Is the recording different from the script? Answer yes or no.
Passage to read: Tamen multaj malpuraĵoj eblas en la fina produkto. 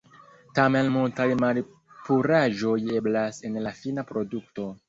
no